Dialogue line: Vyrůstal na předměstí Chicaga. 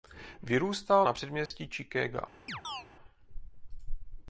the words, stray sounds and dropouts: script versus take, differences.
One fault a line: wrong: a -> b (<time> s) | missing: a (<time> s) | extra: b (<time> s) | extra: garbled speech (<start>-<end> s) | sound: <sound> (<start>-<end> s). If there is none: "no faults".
sound: dropout (1.5-1.5 s)
sound: chirp (2.5-2.9 s)